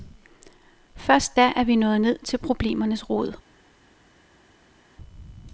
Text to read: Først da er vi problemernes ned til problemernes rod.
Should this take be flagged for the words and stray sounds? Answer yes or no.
yes